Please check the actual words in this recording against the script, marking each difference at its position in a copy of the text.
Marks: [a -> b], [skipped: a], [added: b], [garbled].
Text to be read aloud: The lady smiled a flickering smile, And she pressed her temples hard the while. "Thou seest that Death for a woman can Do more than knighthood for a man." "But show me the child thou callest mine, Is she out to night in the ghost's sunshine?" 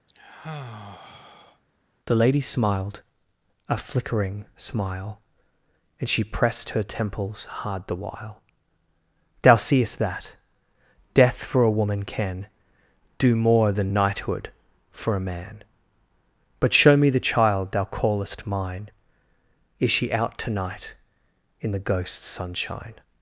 The lady smiled a flickering smile, And she pressed her temples hard the while. "Thou seest that Death for a woman can Do more than knighthood for a man." "But show me the child thou callest mine, Is she out to night in the ghost's sunshine?"